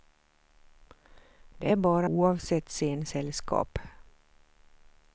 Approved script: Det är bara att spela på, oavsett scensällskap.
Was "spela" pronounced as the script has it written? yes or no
no